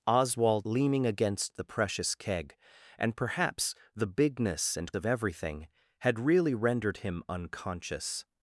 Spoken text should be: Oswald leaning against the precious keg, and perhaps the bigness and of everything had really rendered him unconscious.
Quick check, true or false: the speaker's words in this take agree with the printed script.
true